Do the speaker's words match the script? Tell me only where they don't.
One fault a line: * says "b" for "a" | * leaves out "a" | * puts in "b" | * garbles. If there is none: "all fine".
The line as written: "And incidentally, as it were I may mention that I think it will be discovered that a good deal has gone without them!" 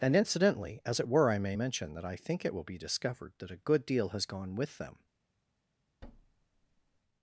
* says "with" for "without"